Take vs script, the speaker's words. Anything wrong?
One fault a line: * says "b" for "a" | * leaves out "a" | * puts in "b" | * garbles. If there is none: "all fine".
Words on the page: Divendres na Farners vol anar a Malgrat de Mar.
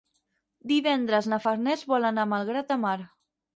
all fine